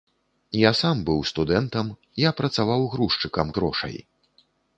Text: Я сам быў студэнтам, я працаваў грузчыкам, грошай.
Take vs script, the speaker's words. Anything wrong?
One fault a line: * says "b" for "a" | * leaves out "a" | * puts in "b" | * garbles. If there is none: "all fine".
all fine